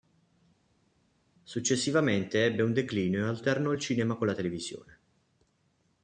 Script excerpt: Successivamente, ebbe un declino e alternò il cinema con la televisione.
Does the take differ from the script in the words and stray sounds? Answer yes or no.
no